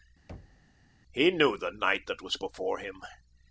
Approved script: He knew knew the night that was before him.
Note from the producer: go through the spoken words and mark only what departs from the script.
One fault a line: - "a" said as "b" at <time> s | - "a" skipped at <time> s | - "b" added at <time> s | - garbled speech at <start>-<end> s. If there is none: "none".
- "knew" skipped at 1.6 s